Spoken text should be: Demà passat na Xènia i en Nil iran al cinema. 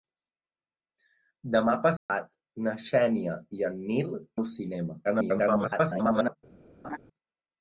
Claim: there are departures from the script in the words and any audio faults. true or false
true